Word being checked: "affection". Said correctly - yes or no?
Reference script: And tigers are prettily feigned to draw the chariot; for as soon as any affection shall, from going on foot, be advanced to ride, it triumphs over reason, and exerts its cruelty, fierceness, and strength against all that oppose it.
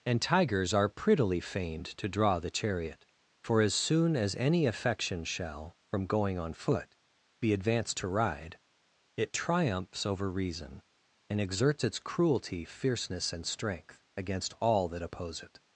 yes